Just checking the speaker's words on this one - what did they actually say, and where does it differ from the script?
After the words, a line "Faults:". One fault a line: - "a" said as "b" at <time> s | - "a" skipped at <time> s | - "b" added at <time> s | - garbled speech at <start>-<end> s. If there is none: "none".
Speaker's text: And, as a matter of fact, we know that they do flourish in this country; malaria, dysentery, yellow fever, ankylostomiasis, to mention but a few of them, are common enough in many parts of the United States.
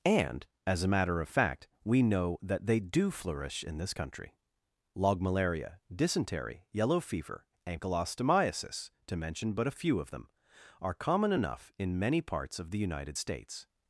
And, as a matter of fact, we know that they do flourish in this country; log malaria, dysentery, yellow fever, ankylostomiasis, to mention but a few of them, are common enough in many parts of the United States.
Faults:
- "log" added at 4.9 s